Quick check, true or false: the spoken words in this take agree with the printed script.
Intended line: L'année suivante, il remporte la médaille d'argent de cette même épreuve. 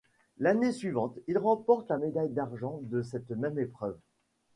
true